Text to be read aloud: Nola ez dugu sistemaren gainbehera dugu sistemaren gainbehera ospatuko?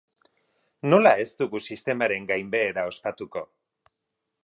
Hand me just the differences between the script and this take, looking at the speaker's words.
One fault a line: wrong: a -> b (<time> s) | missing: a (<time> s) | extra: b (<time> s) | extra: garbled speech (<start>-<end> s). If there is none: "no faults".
missing: dugu sistemaren gainbehera (2.9 s)